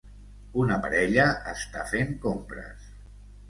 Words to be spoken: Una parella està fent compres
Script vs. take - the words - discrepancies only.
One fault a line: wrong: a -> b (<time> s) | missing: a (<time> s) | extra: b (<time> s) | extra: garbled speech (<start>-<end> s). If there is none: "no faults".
no faults